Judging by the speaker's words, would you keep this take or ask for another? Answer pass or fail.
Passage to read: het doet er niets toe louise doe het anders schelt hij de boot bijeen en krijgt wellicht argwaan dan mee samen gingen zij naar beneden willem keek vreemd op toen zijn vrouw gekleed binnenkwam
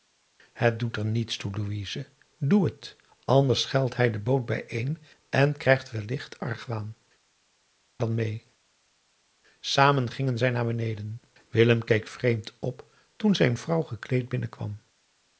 pass